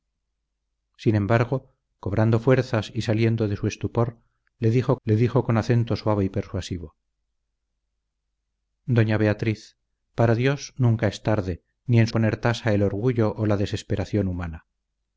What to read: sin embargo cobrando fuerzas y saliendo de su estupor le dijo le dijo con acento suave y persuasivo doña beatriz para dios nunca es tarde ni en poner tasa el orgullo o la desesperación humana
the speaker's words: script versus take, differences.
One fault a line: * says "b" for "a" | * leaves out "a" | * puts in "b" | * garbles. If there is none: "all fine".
all fine